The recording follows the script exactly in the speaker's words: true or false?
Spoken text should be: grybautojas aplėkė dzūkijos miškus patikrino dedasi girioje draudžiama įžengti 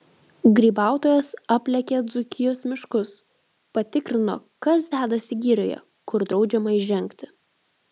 false